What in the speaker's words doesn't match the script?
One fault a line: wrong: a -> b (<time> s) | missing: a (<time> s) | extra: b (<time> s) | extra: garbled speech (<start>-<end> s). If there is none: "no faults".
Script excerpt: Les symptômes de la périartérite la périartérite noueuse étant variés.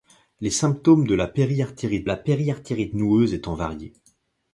no faults